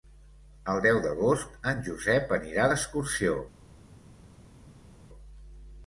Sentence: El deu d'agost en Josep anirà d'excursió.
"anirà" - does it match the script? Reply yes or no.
yes